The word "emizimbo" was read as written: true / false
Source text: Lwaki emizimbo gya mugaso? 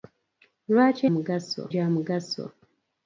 false